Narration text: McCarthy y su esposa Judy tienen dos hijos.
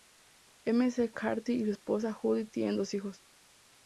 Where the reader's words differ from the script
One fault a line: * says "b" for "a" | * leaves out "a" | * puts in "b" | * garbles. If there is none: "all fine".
all fine